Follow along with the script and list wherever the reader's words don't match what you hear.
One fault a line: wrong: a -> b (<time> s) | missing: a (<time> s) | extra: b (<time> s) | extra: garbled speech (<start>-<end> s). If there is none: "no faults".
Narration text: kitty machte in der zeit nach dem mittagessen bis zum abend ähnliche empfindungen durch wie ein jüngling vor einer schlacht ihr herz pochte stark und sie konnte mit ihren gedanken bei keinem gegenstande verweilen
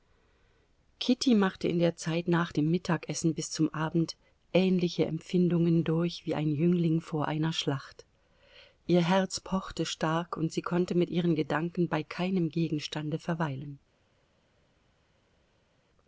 no faults